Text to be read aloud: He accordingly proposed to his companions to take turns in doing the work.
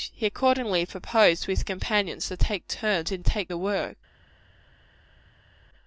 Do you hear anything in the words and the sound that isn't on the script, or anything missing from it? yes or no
yes